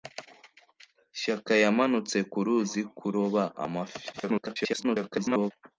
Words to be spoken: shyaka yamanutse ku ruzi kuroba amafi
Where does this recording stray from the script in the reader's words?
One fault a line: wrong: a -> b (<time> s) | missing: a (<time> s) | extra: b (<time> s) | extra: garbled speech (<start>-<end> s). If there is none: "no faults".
extra: garbled speech (4.1-5.5 s)